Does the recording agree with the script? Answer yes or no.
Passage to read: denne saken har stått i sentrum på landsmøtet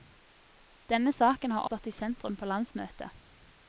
yes